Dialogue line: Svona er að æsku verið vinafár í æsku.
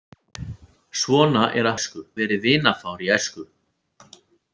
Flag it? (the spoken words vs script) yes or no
no